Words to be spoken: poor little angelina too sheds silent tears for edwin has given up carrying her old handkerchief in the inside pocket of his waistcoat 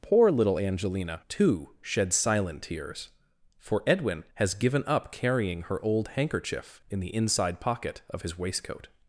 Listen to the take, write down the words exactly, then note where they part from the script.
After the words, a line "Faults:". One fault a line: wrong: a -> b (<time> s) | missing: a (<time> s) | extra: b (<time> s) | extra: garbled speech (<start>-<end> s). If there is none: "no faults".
poor little angelina too sheds silent tears for edwin has given up carrying her old handkerchief in the inside pocket of his waistcoat
Faults:
no faults